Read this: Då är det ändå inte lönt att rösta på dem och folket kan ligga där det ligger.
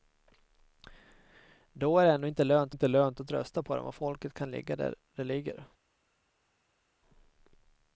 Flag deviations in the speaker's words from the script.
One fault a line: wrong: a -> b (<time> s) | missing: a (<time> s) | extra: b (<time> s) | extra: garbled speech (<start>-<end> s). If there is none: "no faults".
extra: inte lönt (2.7 s)